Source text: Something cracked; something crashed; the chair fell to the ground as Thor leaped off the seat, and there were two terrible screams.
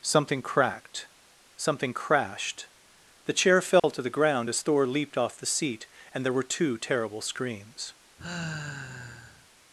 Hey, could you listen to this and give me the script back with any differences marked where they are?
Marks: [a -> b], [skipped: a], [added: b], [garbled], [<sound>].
Something cracked; something crashed; the chair fell [dropout] to the ground as Thor leaped off the seat, and there were two terrible screams. [sigh]